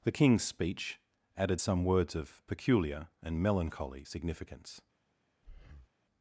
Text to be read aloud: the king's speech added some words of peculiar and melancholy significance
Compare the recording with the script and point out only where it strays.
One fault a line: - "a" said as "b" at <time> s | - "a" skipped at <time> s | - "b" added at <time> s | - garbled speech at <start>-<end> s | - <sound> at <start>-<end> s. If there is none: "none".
- breath at 5.4-5.9 s